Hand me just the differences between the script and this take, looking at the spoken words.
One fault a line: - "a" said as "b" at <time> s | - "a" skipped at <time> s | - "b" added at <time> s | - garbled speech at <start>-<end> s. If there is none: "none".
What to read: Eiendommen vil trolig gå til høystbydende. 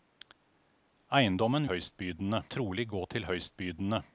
- "vil" said as "høystbydende" at 1.7 s